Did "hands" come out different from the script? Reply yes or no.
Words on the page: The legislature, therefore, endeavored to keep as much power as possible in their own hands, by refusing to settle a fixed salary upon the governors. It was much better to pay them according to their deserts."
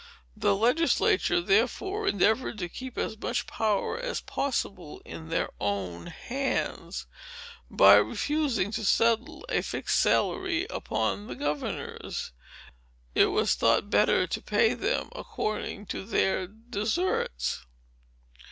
no